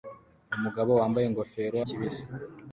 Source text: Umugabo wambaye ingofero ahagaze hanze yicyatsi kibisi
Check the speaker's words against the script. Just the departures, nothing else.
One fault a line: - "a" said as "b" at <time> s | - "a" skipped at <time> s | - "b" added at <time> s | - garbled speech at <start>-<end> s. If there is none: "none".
- "ahagaze hanze yicyatsi" skipped at 1.8 s